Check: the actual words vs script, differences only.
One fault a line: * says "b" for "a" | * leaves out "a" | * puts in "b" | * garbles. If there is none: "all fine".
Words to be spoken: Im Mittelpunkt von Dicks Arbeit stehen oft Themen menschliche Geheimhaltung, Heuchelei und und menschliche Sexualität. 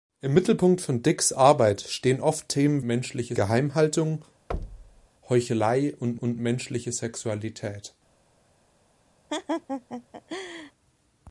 all fine